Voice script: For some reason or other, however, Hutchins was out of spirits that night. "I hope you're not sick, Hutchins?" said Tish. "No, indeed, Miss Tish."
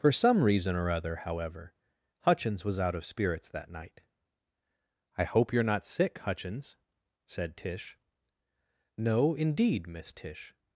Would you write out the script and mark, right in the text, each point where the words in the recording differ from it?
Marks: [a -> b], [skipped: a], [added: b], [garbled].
For some reason or other, however, Hutchins was out of spirits that night. "I hope you're not sick, Hutchins?" said Tish. "No, indeed, Miss Tish."